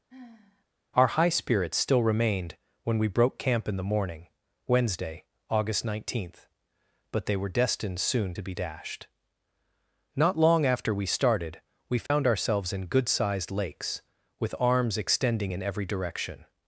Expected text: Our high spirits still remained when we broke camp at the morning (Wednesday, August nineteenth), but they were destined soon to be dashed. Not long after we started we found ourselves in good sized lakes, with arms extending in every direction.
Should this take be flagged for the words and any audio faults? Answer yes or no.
yes